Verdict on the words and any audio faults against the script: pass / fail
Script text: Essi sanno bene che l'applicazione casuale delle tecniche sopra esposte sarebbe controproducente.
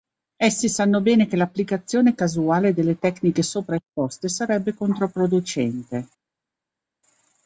pass